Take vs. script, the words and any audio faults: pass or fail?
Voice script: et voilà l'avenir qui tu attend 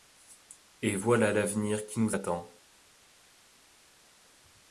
fail